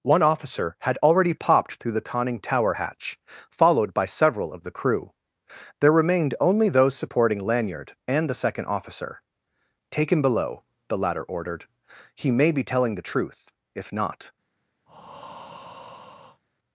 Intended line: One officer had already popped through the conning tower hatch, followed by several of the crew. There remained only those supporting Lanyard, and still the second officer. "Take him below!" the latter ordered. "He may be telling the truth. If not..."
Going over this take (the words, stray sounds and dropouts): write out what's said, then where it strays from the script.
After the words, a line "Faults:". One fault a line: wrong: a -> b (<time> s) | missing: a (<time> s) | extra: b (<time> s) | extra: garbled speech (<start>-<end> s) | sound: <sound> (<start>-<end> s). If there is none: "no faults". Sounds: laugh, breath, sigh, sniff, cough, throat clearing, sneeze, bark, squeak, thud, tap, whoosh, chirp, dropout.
One officer had already popped through the conning tower hatch, followed by several of the crew. There remained only those supporting Lanyard, and the second officer. "Take him below!" the latter ordered. "He may be telling the truth. If not..."
Faults:
missing: still (8.3 s)
sound: breath (14.9-16.4 s)